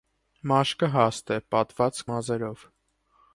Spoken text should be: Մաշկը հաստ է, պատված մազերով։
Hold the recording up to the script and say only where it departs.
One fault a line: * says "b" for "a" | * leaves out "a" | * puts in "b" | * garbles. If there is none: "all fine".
all fine